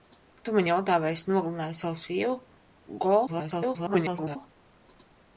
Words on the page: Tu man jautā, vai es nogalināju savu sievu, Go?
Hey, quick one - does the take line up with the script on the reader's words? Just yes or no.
no